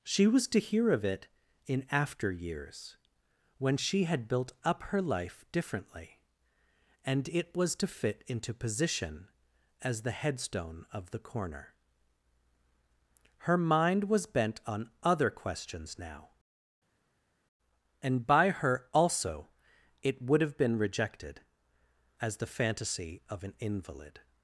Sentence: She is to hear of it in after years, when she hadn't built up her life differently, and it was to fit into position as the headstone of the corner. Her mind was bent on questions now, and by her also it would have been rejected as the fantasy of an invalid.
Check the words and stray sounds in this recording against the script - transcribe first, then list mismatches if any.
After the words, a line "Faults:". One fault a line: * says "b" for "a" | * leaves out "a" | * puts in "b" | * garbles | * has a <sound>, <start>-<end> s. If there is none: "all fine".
She was to hear of it in after years, when she had built up her life differently, and it was to fit into position as the headstone of the corner. Her mind was bent on other questions now, and by her also it would have been rejected as the fantasy of an invalid.
Faults:
* says "was" for "is"
* says "had" for "hadn't"
* puts in "other"